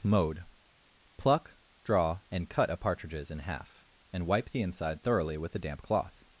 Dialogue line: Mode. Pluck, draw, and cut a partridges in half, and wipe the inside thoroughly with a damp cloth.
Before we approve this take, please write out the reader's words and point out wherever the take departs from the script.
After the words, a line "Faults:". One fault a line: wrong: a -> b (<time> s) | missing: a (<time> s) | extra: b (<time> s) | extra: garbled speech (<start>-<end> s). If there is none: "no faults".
Mode. Pluck, draw, and cut a partridges in half, and wipe the inside thoroughly with a damp cloth.
Faults:
no faults